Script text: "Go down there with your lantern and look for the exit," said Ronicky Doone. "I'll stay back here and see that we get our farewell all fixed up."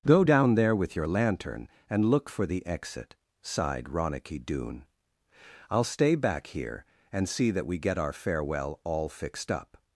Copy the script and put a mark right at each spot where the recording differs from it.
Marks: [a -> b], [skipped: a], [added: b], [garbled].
"Go down there with your lantern and look for the exit," [said -> sighed] Ronicky Doone. "I'll stay back here and see that we get our farewell all fixed up."